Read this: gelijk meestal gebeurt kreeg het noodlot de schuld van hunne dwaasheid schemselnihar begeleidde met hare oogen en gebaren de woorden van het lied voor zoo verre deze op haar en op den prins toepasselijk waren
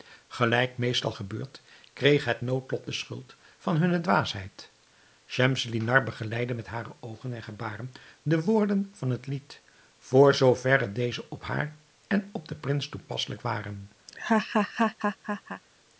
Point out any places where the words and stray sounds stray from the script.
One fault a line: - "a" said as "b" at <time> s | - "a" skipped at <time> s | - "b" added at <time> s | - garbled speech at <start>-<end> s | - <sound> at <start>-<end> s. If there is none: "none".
- laugh at 14.1-15.6 s